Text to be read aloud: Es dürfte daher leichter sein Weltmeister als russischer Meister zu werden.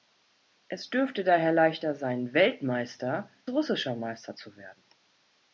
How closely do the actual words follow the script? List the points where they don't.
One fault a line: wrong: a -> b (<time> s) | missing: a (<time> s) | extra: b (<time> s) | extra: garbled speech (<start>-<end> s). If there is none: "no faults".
missing: als (3.3 s)